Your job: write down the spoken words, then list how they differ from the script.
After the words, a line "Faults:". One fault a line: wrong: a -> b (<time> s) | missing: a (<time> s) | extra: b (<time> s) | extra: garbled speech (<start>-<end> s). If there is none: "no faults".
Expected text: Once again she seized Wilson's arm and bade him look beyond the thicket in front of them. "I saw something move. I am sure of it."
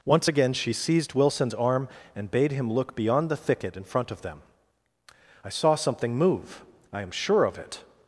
Once again she seized Wilson's arm and bade him look beyond the thicket in front of them. "I saw something move. I am sure of it."
Faults:
no faults